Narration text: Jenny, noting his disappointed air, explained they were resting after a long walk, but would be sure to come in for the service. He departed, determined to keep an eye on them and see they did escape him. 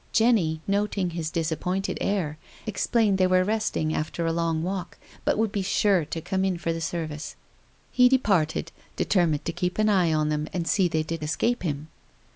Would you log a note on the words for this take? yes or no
no